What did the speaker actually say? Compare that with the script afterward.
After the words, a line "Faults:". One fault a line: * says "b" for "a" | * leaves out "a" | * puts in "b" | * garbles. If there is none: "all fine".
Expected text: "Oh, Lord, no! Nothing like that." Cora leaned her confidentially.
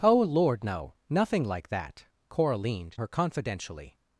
"Oh, Lord, no! Nothing like that." Cora leaned her confidentially.
Faults:
all fine